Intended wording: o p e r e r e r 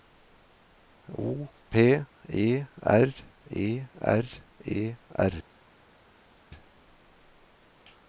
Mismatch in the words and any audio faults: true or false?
false